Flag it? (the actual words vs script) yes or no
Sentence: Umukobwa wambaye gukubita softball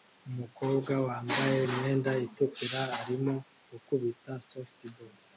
yes